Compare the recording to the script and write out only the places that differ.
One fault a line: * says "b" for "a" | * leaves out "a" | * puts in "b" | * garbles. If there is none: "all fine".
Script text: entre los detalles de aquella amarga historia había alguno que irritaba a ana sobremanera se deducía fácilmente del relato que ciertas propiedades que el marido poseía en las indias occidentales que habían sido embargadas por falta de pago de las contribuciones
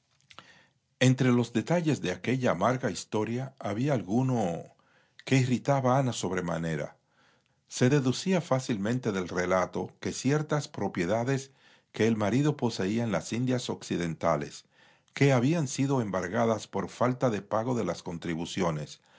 all fine